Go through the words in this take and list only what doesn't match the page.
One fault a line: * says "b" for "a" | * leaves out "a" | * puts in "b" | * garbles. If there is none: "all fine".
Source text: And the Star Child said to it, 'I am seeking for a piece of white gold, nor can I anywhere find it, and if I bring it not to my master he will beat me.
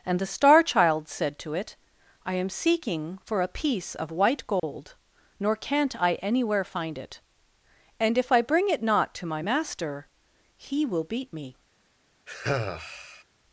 * says "can't" for "can"